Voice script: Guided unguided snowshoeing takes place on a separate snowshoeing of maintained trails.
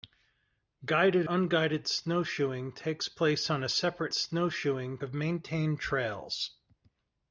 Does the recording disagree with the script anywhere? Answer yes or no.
no